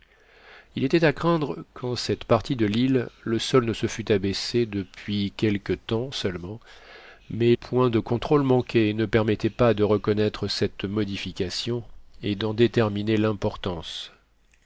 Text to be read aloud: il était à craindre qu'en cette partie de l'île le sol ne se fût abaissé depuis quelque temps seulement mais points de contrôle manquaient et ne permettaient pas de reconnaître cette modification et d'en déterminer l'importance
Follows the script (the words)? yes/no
yes